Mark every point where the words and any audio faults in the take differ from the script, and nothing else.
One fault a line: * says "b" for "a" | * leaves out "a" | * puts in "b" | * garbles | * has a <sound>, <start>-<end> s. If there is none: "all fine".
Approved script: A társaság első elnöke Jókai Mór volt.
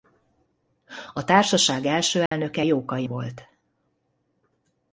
* has a dropout, 2.3-2.3 s
* leaves out "Mór"